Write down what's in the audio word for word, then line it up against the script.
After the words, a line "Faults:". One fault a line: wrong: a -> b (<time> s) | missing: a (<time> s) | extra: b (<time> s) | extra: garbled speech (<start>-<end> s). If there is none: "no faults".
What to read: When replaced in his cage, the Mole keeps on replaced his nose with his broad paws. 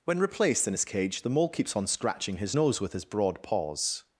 When replaced in his cage, the Mole keeps on scratching his nose with his broad paws.
Faults:
wrong: replaced -> scratching (1.8 s)